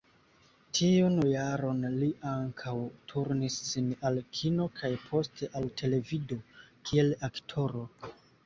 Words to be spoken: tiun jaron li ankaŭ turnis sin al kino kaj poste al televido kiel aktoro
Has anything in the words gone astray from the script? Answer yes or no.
no